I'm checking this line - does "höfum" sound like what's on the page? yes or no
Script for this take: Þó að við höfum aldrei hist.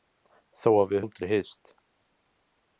no